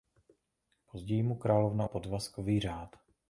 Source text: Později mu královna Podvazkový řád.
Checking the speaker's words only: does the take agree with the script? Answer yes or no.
yes